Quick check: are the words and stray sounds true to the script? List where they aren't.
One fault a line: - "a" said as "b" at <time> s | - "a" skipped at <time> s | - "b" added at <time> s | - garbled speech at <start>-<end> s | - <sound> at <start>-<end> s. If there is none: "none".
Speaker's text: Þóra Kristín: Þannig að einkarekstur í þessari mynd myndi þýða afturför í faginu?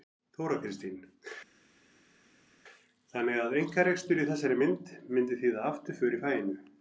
none